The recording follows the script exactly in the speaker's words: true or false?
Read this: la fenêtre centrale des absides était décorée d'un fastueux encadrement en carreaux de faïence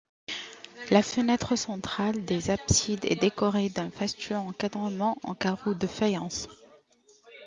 false